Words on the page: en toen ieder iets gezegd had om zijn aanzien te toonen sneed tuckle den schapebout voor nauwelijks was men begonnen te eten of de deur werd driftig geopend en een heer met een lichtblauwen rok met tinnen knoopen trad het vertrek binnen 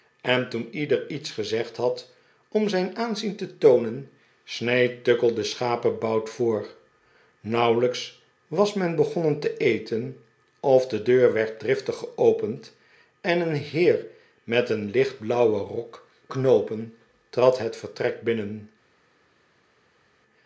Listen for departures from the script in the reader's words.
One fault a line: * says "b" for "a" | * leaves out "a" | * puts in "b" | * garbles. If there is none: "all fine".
* leaves out "met tinnen"